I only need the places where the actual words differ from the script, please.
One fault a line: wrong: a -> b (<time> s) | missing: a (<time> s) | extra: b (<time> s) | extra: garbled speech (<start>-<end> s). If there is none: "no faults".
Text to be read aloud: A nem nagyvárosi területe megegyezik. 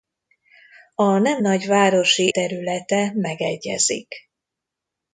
no faults